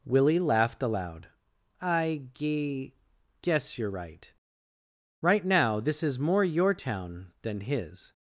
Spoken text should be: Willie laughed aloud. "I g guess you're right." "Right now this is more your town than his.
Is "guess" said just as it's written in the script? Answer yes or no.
yes